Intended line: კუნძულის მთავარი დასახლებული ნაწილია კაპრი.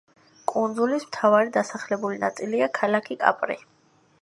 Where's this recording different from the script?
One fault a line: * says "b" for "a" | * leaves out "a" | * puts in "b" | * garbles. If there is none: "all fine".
* puts in "ქალაქი"